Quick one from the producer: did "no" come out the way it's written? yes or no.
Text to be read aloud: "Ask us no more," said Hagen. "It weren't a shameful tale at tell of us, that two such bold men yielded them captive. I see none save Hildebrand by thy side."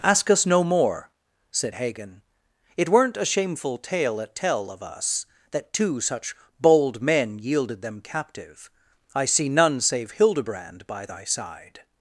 yes